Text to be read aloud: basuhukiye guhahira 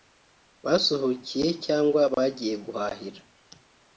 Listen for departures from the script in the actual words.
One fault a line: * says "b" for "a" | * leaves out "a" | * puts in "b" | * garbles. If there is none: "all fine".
* puts in "cyangwa bagiye"